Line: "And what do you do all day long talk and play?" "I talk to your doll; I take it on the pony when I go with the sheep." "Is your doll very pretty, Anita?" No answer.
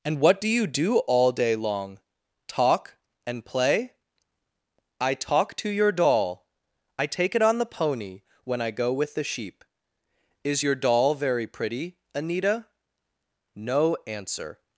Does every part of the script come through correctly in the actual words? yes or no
yes